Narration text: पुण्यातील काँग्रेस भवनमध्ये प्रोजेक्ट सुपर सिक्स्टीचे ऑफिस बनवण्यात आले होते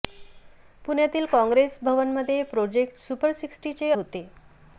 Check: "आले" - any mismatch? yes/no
yes